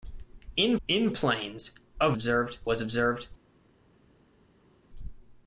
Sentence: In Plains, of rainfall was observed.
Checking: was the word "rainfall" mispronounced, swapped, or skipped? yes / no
yes